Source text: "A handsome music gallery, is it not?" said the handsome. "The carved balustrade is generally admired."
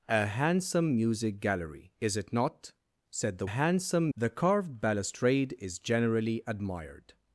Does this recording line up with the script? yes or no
yes